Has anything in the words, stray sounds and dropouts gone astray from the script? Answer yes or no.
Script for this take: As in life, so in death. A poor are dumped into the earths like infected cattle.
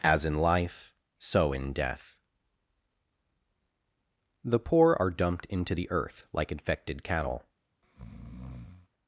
yes